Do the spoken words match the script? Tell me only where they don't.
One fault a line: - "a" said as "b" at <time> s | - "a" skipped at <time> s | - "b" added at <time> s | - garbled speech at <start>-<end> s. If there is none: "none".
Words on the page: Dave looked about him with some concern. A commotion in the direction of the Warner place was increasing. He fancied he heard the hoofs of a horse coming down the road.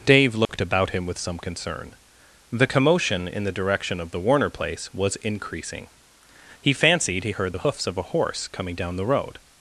- "A" said as "The" at 2.5 s